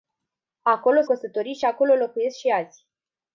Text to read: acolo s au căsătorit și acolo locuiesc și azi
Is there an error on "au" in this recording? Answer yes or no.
yes